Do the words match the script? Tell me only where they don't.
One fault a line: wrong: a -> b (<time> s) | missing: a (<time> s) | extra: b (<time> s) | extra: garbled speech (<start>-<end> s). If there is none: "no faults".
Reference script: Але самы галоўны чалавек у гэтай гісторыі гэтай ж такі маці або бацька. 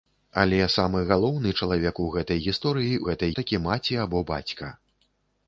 no faults